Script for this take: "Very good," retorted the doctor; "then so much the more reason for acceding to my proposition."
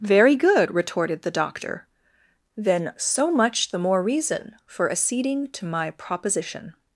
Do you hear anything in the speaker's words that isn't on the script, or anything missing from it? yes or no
no